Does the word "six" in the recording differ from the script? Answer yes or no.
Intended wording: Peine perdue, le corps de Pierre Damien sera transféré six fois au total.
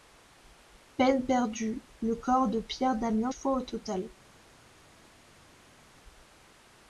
yes